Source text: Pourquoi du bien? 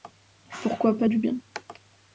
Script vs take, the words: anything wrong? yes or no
yes